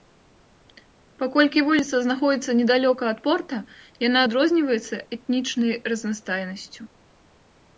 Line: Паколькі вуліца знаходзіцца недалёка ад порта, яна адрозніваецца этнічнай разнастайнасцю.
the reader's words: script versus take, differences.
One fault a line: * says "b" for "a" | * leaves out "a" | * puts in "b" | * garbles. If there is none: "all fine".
all fine